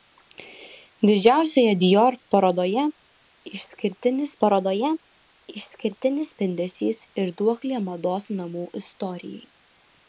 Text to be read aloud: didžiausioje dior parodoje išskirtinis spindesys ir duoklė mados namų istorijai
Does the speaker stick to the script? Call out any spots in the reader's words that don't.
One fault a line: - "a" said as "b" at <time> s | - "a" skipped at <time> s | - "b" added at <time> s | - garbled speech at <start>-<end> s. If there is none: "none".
- "parodoje išskirtinis" added at 4.4 s